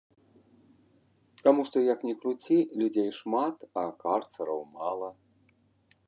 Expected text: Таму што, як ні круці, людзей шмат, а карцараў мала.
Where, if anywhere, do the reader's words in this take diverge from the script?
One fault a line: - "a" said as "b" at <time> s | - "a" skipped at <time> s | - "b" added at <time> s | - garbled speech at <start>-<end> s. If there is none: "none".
none